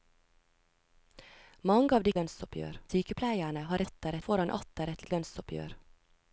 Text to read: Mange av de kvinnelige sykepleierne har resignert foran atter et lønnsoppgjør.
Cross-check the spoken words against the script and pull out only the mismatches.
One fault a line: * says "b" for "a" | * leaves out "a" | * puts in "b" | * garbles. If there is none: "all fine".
* says "lønnsoppgjør" for "kvinnelige"
* says "atter" for "resignert"
* puts in "et"